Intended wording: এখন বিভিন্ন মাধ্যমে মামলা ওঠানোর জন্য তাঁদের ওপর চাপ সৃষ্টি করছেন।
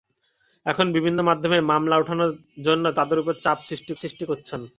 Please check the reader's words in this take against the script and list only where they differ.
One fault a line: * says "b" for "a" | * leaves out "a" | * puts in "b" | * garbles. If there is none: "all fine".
* puts in "সৃষ্টি"